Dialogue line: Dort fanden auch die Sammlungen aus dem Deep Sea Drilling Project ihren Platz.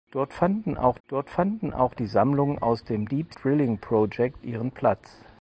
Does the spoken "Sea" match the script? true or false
false